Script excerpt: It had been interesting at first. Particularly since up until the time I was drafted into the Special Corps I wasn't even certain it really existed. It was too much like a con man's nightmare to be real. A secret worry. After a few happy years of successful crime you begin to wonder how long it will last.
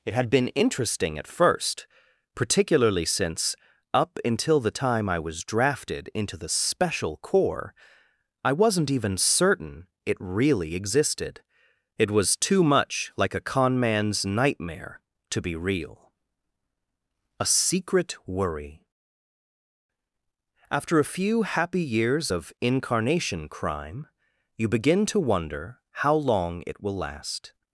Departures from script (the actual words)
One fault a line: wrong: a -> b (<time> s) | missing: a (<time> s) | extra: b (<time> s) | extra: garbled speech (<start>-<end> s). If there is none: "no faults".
wrong: successful -> incarnation (22.6 s)